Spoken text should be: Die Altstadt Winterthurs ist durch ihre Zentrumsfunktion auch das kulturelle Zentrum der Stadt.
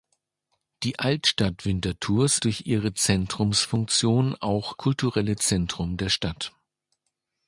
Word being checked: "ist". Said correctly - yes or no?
no